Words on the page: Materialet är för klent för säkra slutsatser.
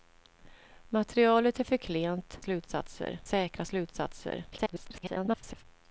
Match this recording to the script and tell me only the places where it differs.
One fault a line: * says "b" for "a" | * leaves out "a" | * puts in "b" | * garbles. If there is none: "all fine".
* says "slutsatser" for "för"
* garbles